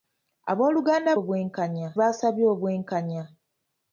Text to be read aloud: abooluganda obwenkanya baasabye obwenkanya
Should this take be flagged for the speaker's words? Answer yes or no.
no